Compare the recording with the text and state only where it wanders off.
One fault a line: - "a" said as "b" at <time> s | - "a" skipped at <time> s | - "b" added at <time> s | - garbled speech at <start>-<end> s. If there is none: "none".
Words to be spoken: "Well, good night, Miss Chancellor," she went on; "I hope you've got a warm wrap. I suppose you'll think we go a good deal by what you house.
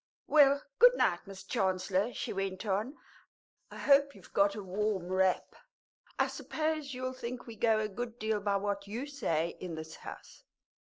- "say in this" added at 9.1 s